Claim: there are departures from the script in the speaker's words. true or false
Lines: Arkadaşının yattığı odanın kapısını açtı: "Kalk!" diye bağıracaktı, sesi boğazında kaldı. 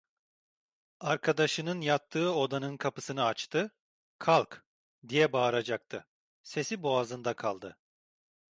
false